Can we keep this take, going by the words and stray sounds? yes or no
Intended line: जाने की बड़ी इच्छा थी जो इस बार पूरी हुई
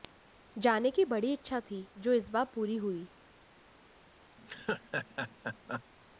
no